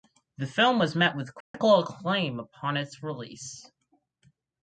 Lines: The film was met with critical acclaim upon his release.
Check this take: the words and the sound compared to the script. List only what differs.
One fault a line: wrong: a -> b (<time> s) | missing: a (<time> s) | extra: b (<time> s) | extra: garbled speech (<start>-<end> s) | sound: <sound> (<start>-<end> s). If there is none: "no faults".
sound: dropout (1.4-1.5 s)
wrong: his -> its (2.8 s)